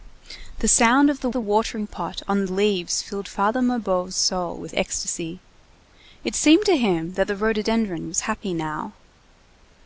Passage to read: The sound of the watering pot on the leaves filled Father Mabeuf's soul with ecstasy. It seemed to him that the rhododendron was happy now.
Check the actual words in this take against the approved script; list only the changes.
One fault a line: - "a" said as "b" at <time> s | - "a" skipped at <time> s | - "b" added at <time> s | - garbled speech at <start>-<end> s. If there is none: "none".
- "the" added at 1.3 s